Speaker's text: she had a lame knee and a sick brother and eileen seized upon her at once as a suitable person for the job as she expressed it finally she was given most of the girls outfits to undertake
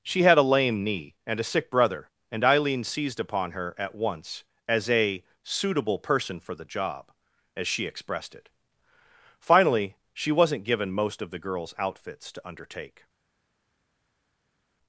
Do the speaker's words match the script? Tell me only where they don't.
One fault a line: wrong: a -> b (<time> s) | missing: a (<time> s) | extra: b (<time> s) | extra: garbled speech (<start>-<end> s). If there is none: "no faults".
wrong: was -> wasn't (10.3 s)